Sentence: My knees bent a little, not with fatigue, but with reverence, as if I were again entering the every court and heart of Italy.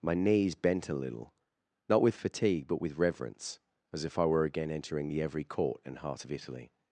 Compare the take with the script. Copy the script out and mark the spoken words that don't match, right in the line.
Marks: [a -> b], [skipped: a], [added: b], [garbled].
My knees bent a little, not with fatigue, but with reverence, as if I were again entering the every court and heart of Italy.